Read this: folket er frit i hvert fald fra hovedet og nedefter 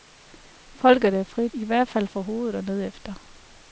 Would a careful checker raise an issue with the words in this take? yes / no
no